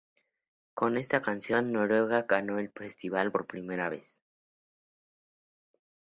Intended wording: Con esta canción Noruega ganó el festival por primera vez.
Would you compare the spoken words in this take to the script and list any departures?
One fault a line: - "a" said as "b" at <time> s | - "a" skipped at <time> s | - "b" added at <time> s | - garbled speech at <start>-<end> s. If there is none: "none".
none